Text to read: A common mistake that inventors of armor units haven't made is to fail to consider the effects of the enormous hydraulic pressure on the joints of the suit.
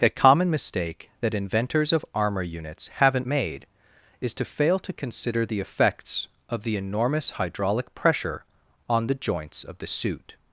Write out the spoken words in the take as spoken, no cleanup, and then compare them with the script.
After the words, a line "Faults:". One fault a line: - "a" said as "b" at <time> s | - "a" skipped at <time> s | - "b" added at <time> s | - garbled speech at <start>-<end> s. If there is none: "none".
A common mistake that inventors of armor units haven't made is to fail to consider the effects of the enormous hydraulic pressure on the joints of the suit.
Faults:
none